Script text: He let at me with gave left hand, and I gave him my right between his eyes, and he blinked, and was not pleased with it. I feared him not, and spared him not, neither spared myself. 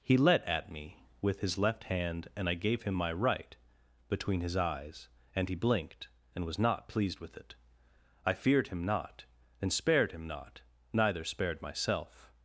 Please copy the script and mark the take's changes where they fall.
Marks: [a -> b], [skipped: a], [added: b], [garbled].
He let at me with [gave -> his] left hand, and I gave him my right between his eyes, and he blinked, and was not pleased with it. I feared him not, and spared him not, neither spared myself.